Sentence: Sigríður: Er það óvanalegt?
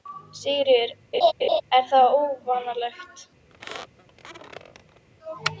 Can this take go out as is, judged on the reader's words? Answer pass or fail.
pass